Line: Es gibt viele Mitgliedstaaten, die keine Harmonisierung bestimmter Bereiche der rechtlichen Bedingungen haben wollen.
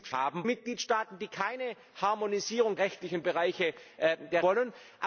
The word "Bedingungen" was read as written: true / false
false